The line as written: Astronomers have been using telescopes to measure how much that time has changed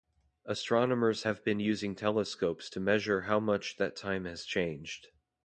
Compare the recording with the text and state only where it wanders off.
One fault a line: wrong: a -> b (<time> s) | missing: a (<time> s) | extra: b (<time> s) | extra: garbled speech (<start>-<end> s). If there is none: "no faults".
no faults